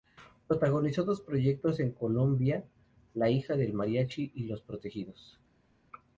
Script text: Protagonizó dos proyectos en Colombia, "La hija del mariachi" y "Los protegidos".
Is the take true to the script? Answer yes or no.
yes